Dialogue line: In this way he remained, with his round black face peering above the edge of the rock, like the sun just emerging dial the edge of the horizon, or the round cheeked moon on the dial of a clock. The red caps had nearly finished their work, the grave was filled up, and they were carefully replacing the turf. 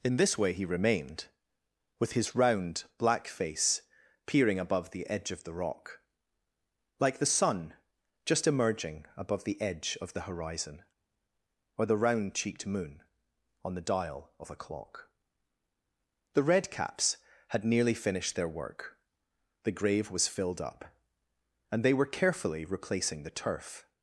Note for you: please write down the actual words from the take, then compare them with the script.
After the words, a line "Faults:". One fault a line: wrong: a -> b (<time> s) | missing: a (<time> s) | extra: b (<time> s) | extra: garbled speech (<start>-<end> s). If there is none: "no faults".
In this way he remained, with his round black face peering above the edge of the rock, like the sun just emerging above the edge of the horizon, or the round cheeked moon on the dial of a clock. The red caps had nearly finished their work, the grave was filled up, and they were carefully replacing the turf.
Faults:
wrong: dial -> above (9.2 s)